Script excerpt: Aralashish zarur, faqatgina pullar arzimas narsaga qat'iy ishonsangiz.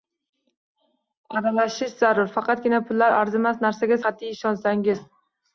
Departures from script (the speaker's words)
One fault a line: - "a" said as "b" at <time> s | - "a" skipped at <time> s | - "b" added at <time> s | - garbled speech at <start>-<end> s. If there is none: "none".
none